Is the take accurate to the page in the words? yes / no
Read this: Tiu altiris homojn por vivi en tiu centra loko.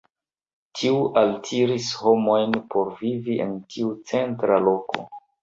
yes